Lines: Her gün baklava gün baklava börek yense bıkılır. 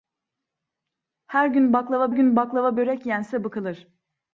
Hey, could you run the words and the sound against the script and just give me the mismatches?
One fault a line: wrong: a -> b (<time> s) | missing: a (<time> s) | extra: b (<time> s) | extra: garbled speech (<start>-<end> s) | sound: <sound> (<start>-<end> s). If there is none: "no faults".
no faults